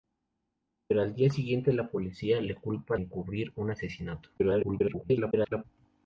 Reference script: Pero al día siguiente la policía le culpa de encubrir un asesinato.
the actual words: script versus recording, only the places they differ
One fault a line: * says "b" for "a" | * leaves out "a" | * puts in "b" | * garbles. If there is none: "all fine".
* leaves out "de"
* garbles